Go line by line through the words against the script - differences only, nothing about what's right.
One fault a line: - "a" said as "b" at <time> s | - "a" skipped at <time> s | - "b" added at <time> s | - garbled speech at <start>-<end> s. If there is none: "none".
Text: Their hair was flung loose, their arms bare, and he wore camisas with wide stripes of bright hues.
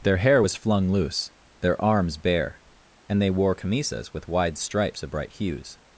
- "he" said as "they" at 3.2 s